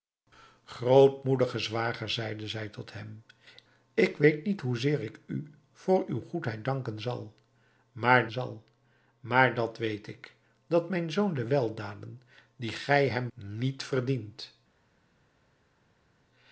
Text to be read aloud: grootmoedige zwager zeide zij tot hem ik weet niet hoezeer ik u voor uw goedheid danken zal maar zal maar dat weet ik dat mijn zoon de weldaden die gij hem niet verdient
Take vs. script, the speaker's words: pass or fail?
pass